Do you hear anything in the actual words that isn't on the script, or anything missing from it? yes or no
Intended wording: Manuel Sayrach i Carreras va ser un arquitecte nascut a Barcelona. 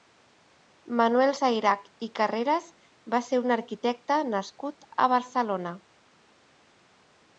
no